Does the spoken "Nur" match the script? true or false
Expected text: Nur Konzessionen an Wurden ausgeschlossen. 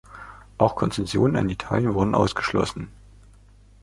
false